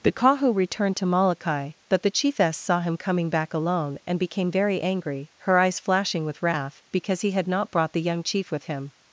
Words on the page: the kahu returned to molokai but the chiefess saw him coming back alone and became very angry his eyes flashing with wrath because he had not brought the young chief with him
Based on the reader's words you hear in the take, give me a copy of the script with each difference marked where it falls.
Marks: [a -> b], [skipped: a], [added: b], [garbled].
the kahu returned to molokai but the chiefess saw him coming back alone and became very angry [his -> her] eyes flashing with wrath because he had not brought the young chief with him